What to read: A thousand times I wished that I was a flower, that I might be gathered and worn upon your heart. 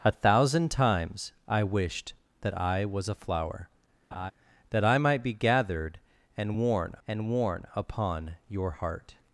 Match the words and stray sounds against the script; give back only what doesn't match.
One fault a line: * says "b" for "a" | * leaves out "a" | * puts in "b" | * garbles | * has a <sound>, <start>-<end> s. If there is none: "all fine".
* has a laugh, 4.1-4.3 s
* puts in "and worn"